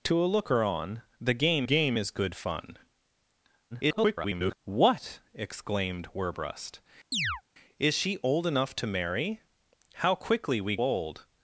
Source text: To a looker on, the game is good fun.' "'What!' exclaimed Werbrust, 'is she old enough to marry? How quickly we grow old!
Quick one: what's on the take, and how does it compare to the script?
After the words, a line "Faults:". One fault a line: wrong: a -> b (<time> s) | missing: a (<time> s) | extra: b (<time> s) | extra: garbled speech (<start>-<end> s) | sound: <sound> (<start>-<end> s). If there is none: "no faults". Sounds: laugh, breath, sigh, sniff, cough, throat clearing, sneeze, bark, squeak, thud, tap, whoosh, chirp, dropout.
To a looker on, the game game is good fun.' [garbled] "'What!' exclaimed Werbrust, 'is she old enough to marry? How quickly we old!
Faults:
extra: game (1.6 s)
extra: garbled speech (3.7-4.6 s)
sound: chirp (7.1-7.4 s)
missing: grow (10.8 s)